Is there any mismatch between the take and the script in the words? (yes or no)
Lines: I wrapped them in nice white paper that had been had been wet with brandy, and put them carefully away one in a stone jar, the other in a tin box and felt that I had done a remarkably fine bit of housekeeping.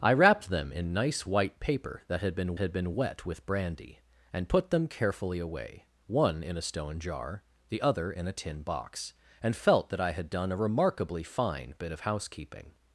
no